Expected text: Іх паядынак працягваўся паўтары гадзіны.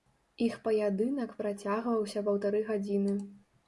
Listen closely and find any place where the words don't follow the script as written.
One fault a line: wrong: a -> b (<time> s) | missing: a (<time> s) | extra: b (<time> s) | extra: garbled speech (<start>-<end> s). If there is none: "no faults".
no faults